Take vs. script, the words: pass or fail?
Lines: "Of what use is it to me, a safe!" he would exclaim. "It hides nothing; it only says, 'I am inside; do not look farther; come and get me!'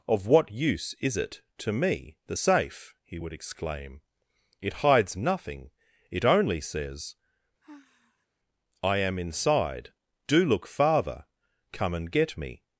fail